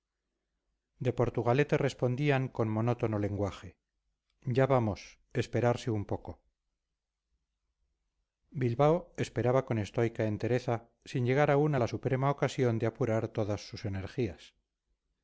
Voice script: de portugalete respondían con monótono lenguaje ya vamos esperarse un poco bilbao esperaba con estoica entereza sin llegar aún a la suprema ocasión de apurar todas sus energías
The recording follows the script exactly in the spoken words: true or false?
true